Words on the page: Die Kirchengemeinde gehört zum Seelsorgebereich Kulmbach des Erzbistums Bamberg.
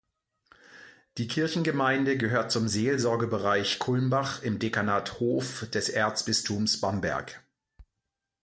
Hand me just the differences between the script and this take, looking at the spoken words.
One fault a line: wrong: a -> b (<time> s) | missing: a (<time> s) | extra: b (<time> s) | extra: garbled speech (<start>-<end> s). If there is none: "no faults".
extra: im Dekanat Hof (4.4 s)